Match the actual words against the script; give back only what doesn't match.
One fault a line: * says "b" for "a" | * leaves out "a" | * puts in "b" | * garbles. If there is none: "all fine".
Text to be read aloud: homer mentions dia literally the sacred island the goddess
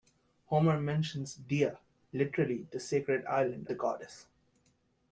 all fine